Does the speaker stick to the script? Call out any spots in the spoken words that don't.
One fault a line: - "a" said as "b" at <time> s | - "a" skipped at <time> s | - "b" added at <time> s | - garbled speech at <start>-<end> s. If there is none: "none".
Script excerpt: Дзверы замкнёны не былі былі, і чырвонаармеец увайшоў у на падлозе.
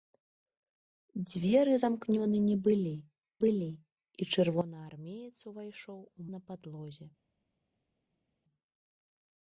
none